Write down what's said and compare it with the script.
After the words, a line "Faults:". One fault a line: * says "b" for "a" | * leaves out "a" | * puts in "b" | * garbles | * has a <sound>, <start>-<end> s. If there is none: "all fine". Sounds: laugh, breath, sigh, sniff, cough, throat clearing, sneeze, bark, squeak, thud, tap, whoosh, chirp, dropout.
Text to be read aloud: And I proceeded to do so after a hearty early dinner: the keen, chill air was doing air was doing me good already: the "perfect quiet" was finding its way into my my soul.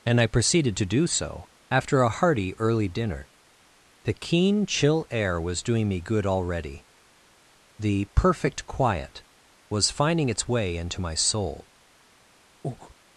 And I proceeded to do so after a hearty early dinner: the keen, chill air was doing me good already: the "perfect quiet" was finding its way into my soul.
Faults:
* leaves out "air was doing"
* leaves out "my"
* has a breath, 12.6-12.9 s